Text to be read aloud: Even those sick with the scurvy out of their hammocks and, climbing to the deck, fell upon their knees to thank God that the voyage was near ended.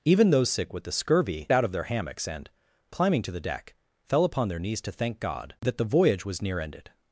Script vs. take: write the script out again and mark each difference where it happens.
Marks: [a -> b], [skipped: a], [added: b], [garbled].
Even those sick with the scurvy out of their hammocks and, climbing to the deck, fell upon their knees to thank God that the voyage was near ended.